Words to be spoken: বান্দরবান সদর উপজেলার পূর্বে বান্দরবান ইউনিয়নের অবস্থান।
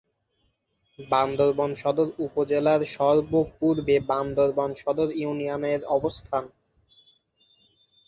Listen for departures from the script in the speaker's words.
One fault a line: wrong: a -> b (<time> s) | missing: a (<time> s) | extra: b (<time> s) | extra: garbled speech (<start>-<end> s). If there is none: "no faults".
extra: সর্ব (3.0 s)
extra: সদর (4.8 s)